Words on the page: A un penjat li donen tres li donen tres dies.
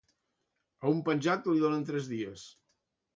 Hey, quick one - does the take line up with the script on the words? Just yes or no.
no